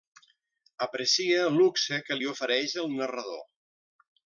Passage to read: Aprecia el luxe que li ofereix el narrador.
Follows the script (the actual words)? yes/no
yes